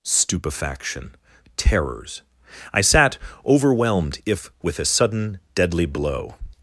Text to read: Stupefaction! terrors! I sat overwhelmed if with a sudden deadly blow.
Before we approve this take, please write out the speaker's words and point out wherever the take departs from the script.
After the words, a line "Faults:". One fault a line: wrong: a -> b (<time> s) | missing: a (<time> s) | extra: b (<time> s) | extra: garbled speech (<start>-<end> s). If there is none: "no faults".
Stupefaction! terrors! I sat overwhelmed if with a sudden deadly blow.
Faults:
no faults